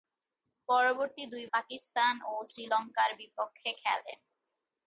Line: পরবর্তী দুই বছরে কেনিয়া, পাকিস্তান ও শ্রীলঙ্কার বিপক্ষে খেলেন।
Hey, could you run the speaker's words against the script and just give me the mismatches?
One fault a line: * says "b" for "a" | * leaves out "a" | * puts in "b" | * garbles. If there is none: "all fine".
* leaves out "বছরে কেনিয়া"